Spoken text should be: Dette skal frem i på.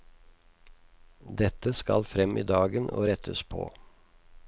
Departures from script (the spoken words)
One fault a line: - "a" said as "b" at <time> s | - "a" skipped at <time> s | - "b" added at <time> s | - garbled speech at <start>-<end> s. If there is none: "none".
- "dagen og rettes" added at 2.5 s